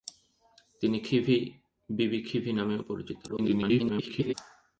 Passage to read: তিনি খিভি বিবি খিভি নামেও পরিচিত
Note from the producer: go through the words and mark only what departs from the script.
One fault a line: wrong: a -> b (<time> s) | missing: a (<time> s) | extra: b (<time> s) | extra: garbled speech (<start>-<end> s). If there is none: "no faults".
extra: garbled speech (3.3-4.3 s)